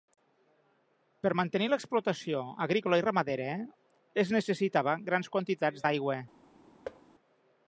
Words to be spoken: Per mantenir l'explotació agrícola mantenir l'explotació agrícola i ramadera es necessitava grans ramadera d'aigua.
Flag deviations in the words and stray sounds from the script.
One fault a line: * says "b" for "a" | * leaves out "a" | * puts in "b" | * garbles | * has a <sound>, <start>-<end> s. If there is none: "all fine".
* leaves out "mantenir l'explotació agrícola"
* says "quantitats" for "ramadera"
* has a thud, 6.9-7.0 s